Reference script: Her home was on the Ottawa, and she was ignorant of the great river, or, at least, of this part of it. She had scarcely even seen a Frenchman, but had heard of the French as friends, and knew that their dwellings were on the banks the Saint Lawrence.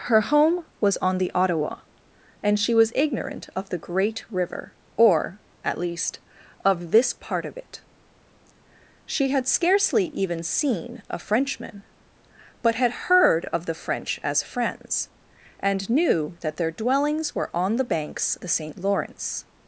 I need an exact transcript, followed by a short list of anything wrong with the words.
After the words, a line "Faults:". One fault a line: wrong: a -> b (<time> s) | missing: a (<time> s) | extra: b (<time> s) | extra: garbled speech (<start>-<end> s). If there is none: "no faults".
Her home was on the Ottawa, and she was ignorant of the great river, or, at least, of this part of it. She had scarcely even seen a Frenchman, but had heard of the French as friends, and knew that their dwellings were on the banks the Saint Lawrence.
Faults:
no faults